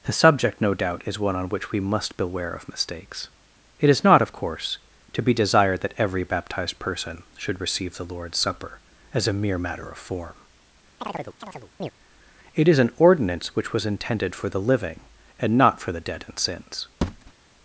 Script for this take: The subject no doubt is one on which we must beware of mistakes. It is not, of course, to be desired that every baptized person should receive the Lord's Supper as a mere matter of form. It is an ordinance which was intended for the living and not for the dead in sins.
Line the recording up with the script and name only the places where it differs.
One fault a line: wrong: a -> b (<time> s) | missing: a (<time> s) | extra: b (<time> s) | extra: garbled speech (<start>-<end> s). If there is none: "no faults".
no faults